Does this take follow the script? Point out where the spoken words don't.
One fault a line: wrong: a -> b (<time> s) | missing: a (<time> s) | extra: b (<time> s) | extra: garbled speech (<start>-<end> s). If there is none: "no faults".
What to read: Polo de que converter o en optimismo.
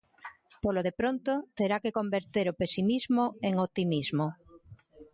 extra: pronto terá (1.0 s)
extra: pesimismo (2.6 s)